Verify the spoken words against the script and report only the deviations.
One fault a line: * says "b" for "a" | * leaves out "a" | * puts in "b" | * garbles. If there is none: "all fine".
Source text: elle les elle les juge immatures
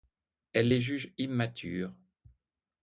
* leaves out "elle les"